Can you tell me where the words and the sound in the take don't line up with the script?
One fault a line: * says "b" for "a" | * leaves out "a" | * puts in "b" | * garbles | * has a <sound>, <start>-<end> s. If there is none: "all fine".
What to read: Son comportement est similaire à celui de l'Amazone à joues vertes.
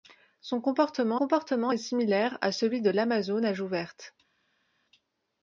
* puts in "comportement"